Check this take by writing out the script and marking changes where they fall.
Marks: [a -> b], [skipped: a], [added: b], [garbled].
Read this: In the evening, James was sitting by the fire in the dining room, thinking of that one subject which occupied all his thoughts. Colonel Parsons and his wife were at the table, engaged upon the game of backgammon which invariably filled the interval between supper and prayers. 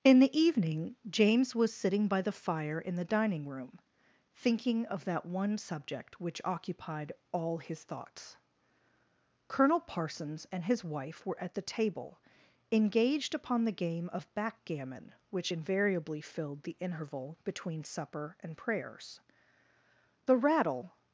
In the evening, James was sitting by the fire in the dining room, thinking of that one subject which occupied all his thoughts. Colonel Parsons and his wife were at the table, engaged upon the game of backgammon which invariably filled the interval between supper and prayers. [added: The rattle]